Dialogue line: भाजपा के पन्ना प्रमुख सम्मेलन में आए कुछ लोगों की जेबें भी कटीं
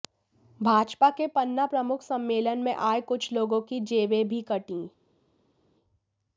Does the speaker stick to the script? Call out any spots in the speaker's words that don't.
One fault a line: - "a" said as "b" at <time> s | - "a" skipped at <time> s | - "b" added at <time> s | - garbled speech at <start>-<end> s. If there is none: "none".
none